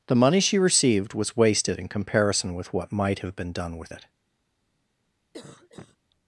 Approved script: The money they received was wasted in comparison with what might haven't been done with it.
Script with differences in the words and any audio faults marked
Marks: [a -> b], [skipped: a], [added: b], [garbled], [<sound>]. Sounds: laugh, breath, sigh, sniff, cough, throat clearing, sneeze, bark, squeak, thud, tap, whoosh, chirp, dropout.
The money [they -> she] received was wasted in comparison with what might [haven't -> have] been done with it. [cough]